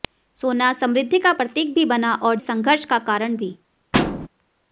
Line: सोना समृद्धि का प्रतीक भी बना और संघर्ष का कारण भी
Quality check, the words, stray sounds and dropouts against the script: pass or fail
fail